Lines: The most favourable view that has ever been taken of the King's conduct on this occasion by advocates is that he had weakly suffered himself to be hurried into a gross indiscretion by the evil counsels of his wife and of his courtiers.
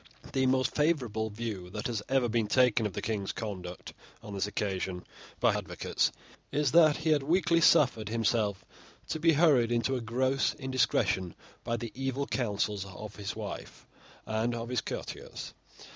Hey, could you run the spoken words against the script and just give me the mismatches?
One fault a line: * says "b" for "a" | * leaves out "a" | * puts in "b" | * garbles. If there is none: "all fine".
all fine